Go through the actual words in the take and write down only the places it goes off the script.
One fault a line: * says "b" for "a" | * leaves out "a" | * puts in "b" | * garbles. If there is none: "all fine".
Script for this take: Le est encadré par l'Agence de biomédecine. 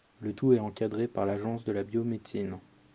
* puts in "tout"
* puts in "la"